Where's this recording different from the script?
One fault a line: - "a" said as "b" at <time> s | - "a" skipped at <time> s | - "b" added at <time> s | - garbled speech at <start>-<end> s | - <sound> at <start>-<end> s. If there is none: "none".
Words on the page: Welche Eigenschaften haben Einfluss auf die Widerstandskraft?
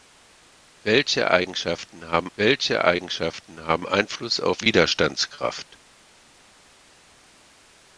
- "welche Eigenschaften haben" added at 2.4 s
- "die" skipped at 4.6 s